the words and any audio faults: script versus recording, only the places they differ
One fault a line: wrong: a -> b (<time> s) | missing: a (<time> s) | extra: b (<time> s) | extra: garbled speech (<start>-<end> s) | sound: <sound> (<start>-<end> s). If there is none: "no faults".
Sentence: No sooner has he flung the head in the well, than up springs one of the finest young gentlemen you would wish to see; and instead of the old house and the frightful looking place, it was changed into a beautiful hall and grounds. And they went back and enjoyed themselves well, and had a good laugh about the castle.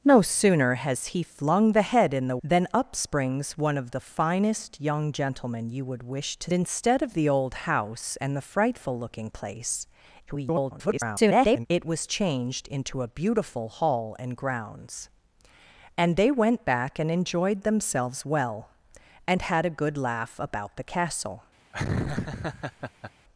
missing: well (2.4 s)
missing: see and (6.5 s)
extra: garbled speech (10.3-11.7 s)
sound: laugh (21.7-23.1 s)